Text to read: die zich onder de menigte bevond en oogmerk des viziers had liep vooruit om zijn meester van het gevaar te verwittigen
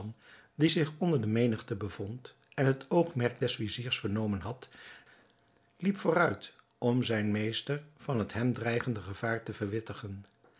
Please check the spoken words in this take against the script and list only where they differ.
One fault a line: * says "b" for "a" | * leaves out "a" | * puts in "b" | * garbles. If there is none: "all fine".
* puts in "het"
* puts in "vernomen"
* puts in "hem dreigende"